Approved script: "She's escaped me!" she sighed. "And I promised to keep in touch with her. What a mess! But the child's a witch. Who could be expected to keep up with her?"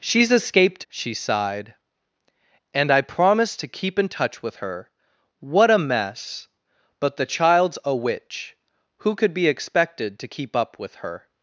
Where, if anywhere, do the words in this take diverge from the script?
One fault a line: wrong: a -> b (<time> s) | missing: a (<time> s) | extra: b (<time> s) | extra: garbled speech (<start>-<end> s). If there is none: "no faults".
missing: me (0.9 s)